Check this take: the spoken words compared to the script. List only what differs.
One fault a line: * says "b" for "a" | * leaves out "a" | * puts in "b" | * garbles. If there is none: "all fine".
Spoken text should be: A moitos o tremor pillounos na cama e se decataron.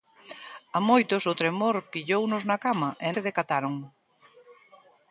all fine